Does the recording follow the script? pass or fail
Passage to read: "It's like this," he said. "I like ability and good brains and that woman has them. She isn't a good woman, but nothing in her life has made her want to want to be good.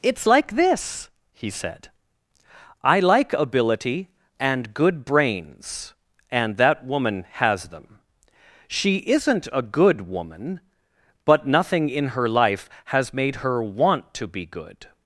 fail